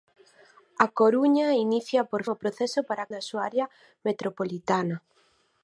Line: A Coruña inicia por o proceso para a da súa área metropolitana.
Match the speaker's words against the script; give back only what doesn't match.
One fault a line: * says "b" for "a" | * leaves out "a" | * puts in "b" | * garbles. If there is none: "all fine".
all fine